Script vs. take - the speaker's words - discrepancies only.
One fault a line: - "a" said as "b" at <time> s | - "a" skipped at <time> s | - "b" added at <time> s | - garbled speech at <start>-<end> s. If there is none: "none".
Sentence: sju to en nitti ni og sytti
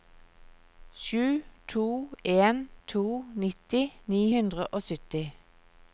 - "to" added at 2.9 s
- "hundre" added at 4.3 s